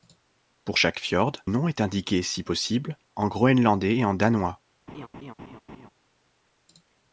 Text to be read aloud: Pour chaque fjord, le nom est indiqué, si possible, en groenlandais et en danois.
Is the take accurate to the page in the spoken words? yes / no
no